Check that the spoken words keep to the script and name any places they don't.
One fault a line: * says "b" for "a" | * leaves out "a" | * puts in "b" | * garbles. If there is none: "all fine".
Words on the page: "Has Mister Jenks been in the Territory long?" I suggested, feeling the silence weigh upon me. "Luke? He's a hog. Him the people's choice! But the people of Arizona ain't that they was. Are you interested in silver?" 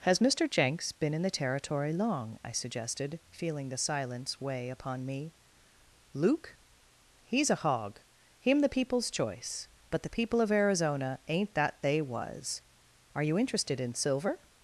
all fine